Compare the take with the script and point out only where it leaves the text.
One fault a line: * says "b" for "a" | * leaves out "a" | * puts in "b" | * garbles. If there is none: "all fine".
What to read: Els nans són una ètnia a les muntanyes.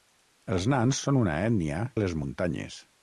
all fine